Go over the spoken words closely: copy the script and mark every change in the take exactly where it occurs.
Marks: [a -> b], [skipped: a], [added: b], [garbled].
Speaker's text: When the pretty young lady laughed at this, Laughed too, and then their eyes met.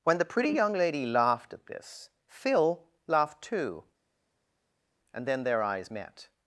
When the pretty young lady laughed at this, [added: Phil] Laughed too, and then their eyes met.